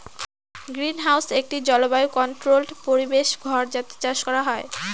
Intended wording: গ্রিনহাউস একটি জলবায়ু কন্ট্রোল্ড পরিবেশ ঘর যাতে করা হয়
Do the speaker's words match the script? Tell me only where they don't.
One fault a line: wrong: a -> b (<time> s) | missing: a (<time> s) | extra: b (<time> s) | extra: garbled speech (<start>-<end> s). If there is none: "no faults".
extra: চাষ (4.0 s)